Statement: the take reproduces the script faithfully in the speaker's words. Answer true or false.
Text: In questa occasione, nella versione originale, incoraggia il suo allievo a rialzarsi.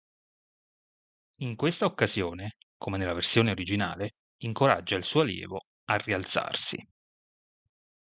false